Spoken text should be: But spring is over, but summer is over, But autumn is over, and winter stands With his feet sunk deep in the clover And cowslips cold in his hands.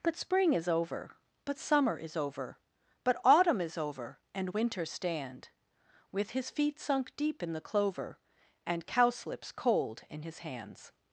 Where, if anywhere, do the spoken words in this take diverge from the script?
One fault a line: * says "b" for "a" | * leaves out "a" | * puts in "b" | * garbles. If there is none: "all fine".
* says "stand" for "stands"